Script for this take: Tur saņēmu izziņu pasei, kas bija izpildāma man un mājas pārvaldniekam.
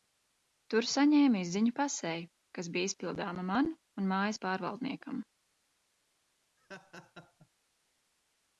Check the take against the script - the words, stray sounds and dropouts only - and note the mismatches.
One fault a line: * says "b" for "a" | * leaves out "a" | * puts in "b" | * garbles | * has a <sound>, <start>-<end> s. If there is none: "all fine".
* has a laugh, 6.6-7.5 s